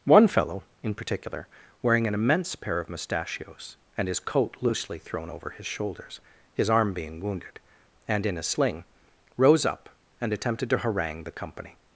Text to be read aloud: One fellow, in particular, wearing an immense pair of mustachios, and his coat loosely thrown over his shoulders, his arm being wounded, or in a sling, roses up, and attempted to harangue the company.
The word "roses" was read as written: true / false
false